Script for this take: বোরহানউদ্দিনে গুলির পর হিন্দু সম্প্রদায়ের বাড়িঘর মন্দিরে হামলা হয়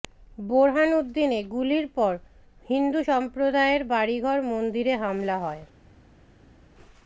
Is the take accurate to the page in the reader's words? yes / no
yes